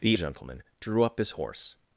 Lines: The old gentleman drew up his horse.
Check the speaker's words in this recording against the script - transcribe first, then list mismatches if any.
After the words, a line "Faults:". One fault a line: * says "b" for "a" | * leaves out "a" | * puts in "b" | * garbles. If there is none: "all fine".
The gentleman drew up his horse.
Faults:
* leaves out "old"